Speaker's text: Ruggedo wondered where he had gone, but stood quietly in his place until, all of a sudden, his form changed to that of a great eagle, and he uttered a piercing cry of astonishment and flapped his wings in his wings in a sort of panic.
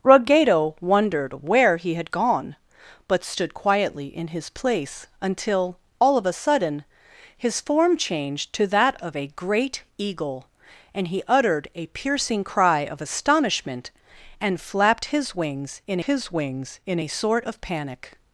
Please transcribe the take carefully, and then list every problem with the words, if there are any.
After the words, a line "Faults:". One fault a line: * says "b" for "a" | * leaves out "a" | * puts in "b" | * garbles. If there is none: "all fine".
Ruggedo wondered where he had gone, but stood quietly in his place until, all of a sudden, his form changed to that of a great eagle, and he uttered a piercing cry of astonishment and flapped his wings in his wings in a sort of panic.
Faults:
all fine